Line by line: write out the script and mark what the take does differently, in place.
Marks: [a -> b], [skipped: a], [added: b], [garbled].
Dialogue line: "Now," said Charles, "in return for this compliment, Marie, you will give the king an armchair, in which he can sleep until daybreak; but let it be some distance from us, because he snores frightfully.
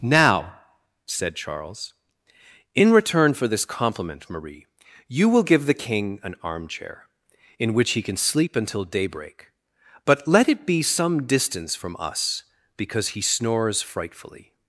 "Now," said Charles, "in return for this compliment, Marie, you will give the king an armchair, in which he can sleep until daybreak; but let it be some distance from us, because he snores frightfully.